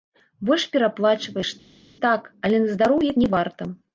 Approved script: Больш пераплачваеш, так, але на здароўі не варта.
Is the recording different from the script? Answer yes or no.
no